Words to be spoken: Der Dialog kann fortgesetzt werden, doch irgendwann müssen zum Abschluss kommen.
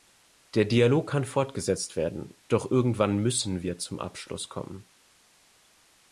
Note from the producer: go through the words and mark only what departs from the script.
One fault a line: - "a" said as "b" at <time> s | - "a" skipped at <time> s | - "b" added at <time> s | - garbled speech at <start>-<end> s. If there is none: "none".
- "wir" added at 3.6 s